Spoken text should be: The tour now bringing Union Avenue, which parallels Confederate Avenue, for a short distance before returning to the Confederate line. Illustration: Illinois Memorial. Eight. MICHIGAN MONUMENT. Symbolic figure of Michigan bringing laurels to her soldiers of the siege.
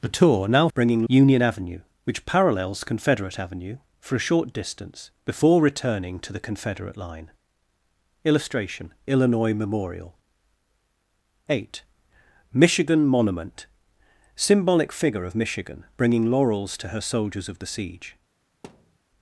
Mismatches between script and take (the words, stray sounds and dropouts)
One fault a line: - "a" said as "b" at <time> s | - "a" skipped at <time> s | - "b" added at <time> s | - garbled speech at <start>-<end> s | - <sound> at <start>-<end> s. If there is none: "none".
- thud at 18.6-19.0 s